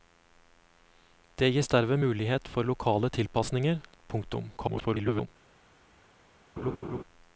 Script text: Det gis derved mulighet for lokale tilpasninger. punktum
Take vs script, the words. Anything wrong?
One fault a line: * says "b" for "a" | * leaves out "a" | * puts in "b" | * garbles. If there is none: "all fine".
* garbles